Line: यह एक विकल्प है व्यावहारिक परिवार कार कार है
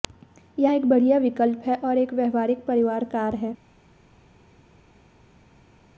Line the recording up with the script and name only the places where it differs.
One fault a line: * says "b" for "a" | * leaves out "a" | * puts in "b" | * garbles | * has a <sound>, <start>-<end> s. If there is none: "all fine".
* puts in "बढ़िया"
* puts in "और एक"
* leaves out "कार"